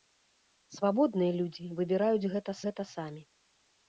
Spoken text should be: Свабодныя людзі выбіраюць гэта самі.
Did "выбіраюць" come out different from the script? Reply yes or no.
no